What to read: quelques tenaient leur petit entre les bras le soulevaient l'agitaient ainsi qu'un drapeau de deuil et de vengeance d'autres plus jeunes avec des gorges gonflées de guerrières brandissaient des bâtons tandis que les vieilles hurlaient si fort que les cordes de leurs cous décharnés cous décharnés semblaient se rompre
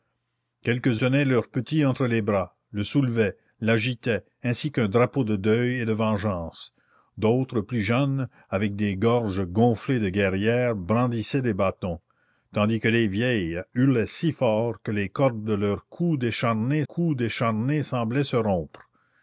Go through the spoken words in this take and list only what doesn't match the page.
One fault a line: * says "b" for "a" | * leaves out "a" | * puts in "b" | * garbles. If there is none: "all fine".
all fine